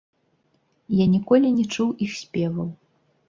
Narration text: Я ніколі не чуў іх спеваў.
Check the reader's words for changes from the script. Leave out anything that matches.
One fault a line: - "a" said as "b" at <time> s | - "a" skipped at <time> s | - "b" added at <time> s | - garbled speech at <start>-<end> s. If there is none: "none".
none